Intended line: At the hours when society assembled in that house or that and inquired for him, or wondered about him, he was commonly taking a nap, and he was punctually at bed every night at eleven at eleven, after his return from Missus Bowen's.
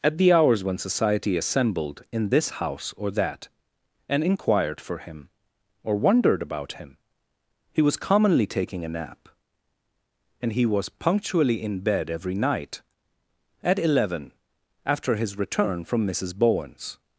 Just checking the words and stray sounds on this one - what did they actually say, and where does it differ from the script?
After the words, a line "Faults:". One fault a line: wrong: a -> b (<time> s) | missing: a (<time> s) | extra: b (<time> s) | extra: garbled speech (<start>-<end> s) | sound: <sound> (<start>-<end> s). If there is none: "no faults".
At the hours when society assembled in this house or that and inquired for him, or wondered about him, he was commonly taking a nap, and he was punctually in bed every night at eleven, after his return from Missus Bowen's.
Faults:
wrong: that -> this (2.3 s)
wrong: at -> in (11.6 s)
missing: at eleven (14.3 s)